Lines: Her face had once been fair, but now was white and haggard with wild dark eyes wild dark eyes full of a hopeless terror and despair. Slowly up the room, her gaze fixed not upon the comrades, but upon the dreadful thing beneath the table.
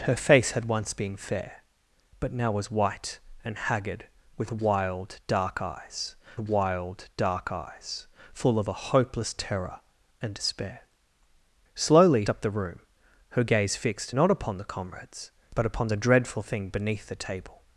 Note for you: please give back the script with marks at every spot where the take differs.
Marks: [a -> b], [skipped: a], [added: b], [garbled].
Her face had once been fair, but now was white and haggard with wild dark eyes wild dark eyes full of a hopeless terror and despair. Slowly up the room, her gaze fixed not upon the comrades, but upon the dreadful thing beneath the table.